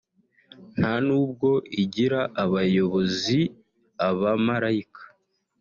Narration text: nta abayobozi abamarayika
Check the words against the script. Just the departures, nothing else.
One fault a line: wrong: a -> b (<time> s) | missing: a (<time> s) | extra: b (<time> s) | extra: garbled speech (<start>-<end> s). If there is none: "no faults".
extra: nubwo igira (1.1 s)